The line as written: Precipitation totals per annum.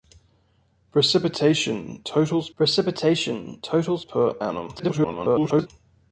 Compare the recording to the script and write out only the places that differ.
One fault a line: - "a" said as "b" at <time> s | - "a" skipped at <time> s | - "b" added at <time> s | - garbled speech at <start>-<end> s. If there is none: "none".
- "precipitation totals" added at 2.6 s
- garbled speech at 4.8-5.7 s